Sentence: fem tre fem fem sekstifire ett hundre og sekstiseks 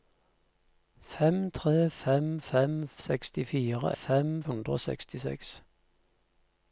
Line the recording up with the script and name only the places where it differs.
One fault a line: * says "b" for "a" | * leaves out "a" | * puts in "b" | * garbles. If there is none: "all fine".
* says "fem" for "ett"